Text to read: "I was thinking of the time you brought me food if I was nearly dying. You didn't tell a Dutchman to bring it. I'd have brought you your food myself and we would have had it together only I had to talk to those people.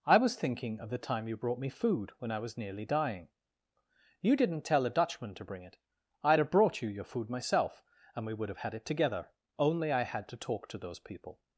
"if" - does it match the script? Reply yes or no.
no